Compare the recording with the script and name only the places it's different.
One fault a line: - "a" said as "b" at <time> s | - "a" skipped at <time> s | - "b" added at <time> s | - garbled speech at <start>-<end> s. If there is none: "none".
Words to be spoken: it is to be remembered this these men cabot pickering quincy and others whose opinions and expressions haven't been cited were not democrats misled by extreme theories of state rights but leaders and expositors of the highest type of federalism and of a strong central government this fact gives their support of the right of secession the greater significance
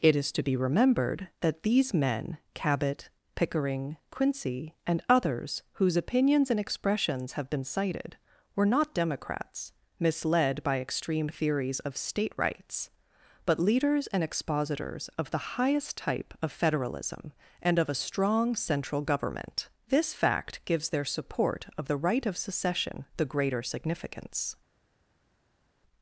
- "this" said as "that" at 1.4 s
- "haven't" said as "have" at 7.3 s